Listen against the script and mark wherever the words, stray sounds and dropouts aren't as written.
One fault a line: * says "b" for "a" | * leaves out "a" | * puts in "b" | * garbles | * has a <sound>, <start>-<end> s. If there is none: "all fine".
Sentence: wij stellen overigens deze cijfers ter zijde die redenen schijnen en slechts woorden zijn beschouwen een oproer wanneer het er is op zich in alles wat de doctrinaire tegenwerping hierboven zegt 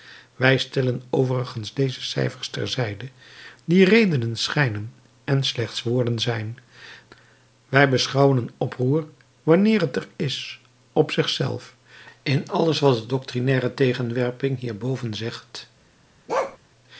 * puts in "wij"
* puts in "zelf"
* has a bark, 16.3-16.6 s